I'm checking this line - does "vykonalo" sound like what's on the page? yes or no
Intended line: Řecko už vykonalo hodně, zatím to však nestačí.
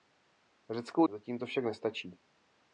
no